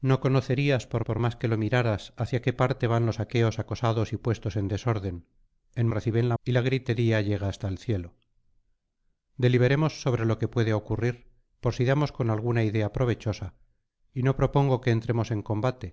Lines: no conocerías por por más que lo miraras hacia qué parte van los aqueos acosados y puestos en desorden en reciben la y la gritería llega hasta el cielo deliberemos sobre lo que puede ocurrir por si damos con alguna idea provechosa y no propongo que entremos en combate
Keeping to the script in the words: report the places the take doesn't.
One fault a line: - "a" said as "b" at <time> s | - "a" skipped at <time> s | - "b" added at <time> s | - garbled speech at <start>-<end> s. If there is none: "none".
none